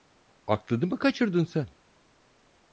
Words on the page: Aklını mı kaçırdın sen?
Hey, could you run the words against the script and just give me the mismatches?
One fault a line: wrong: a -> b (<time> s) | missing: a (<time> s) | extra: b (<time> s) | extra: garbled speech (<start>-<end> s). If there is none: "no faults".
no faults